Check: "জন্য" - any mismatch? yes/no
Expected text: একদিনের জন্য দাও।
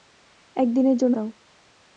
no